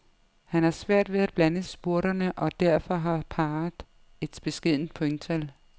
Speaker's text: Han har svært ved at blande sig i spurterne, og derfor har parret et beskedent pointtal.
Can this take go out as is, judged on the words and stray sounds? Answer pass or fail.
fail